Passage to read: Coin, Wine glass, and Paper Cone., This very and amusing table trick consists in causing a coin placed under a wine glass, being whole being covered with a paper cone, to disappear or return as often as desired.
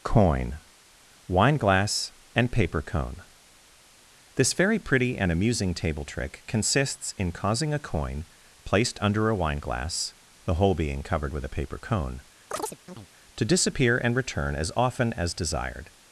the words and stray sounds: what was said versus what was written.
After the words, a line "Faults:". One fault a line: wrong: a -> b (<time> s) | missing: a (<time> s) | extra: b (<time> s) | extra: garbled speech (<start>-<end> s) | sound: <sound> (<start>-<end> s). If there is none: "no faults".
Coin, Wine glass, and Paper Cone., This very pretty and amusing table trick consists in causing a coin placed under a wine glass, the whole being covered with a paper cone, to disappear and return as often as desired.
Faults:
extra: pretty (4.8 s)
wrong: being -> the (10.4 s)
sound: chirp (12.5-13.1 s)
wrong: or -> and (14.0 s)